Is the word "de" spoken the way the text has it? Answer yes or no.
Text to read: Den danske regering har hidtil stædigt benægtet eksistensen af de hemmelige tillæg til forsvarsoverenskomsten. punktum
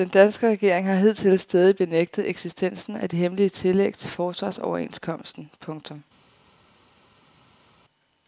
yes